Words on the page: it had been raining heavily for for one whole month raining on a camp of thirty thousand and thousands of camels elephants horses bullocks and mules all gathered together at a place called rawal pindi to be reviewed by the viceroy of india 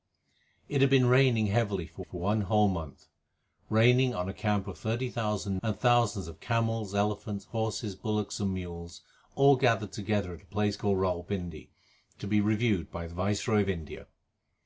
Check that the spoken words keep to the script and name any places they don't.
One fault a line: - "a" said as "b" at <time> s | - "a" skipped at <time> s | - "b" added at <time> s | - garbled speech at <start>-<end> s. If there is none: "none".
none